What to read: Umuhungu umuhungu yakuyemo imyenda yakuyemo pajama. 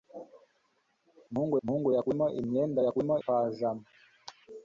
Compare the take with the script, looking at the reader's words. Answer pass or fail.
pass